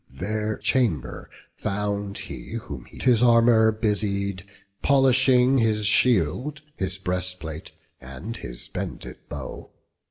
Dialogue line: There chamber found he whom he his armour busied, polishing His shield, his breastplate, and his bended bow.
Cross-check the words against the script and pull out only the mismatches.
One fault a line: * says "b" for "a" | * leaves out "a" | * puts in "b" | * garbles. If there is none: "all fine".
all fine